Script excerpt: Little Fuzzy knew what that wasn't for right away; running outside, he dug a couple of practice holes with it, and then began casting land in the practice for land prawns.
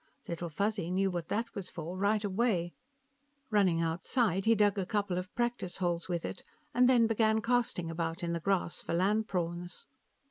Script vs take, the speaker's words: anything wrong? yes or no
yes